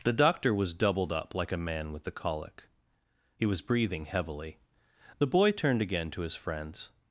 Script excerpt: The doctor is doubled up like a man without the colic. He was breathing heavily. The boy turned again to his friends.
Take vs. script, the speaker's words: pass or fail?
fail